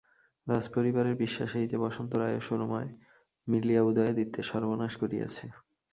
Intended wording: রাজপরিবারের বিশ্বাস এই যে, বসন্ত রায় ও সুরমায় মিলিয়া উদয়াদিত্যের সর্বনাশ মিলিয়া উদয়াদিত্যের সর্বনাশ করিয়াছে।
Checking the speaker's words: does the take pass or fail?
fail